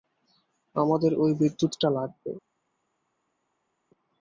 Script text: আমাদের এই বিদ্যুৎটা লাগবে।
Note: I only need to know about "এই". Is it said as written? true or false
false